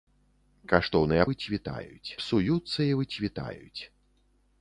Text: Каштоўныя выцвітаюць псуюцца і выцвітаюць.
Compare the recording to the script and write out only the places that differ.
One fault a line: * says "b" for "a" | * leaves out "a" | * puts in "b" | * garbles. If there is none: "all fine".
all fine